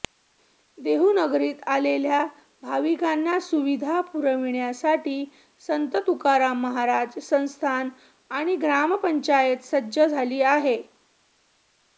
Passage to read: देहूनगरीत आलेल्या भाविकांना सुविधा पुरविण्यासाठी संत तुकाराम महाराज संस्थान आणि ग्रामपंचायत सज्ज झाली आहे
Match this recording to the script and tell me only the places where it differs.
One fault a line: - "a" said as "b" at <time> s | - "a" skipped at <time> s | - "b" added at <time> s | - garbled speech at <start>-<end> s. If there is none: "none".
none